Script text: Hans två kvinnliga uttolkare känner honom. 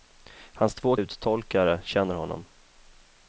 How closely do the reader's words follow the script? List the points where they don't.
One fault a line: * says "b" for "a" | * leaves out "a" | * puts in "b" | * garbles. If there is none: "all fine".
* leaves out "kvinnliga"